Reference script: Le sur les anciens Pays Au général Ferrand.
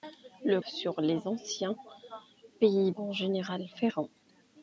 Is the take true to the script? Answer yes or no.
yes